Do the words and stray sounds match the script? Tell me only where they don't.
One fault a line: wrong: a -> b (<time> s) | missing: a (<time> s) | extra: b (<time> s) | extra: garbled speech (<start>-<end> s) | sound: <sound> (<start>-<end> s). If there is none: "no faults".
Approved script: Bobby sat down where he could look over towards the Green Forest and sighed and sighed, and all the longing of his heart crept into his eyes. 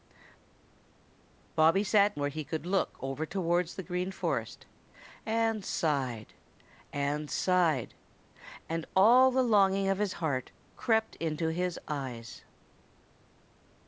missing: down (2.2 s)